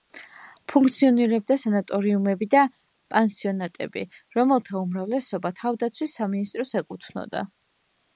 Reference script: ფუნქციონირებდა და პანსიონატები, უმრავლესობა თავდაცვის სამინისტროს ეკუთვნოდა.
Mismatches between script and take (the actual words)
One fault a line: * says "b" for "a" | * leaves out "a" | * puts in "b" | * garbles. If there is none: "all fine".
* puts in "სანატორიუმები"
* puts in "რომელთა"